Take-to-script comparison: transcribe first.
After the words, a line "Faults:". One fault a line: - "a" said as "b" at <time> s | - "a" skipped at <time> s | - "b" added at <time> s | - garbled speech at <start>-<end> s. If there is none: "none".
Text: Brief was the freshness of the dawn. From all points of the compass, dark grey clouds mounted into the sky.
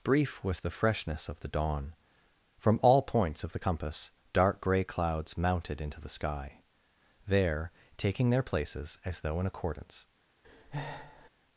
Brief was the freshness of the dawn. From all points of the compass, dark grey clouds mounted into the sky. There, taking their places as though in accordance
Faults:
- "There taking their places as though in accordance" added at 7.3 s